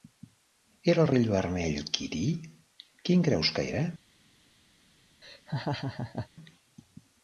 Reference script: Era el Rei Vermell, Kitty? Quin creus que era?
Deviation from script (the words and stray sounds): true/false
true